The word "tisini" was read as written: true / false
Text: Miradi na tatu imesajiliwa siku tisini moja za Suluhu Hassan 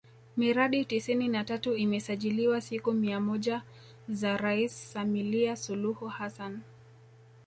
false